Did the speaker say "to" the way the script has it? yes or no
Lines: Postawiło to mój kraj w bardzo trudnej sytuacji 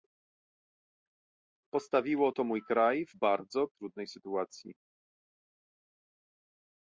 yes